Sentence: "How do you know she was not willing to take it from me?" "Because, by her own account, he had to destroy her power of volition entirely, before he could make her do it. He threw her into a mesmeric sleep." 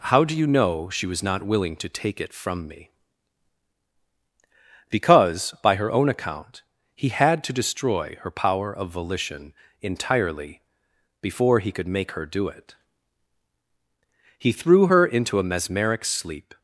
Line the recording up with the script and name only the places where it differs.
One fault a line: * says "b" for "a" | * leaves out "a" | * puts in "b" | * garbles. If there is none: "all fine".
all fine